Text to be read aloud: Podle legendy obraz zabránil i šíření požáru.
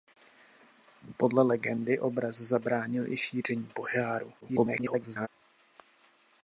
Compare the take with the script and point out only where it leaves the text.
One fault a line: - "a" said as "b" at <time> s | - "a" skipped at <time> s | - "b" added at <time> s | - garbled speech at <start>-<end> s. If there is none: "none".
- garbled speech at 4.4-5.3 s